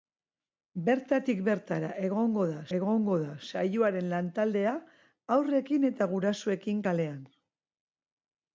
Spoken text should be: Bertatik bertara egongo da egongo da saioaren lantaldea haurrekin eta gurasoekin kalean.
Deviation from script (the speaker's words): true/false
false